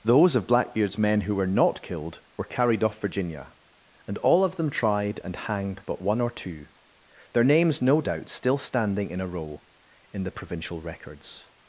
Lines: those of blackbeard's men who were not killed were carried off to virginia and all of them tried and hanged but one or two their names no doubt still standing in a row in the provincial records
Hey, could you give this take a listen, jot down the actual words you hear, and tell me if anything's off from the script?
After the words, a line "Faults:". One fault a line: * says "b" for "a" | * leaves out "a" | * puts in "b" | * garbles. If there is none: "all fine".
those of blackbeard's men who were not killed were carried off virginia and all of them tried and hanged but one or two their names no doubt still standing in a row in the provincial records
Faults:
* leaves out "to"